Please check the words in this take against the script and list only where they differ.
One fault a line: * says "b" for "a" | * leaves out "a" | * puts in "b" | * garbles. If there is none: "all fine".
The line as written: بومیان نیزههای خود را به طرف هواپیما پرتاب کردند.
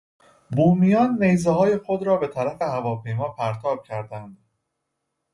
all fine